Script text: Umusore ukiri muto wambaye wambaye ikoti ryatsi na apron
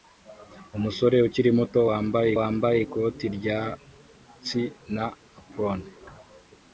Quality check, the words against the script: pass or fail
pass